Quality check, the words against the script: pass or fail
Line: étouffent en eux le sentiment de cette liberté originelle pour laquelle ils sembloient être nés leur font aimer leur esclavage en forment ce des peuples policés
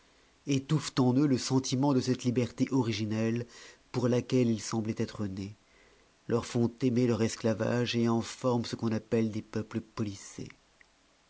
fail